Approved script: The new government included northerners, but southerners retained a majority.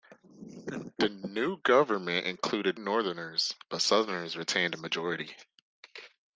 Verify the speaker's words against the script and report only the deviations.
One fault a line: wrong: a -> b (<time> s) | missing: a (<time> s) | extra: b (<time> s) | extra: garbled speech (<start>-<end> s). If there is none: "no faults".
no faults